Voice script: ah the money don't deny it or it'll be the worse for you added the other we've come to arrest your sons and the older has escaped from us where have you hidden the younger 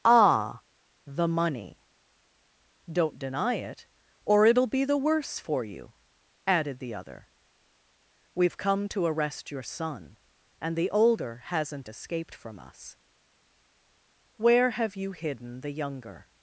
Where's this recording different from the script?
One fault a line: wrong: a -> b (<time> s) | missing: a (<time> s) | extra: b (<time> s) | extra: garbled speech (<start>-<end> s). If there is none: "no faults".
wrong: sons -> son (9.6 s)
wrong: has -> hasn't (11.4 s)